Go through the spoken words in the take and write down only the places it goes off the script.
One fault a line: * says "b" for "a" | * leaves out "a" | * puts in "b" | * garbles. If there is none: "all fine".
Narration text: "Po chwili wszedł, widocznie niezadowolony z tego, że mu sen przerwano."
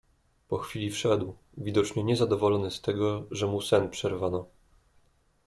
all fine